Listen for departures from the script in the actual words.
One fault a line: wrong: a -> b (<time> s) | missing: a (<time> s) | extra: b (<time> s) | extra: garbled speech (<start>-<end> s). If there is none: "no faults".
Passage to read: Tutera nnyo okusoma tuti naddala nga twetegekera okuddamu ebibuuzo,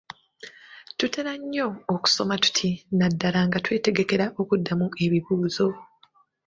no faults